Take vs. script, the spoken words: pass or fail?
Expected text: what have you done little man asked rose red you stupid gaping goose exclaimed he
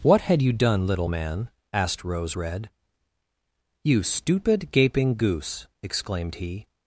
fail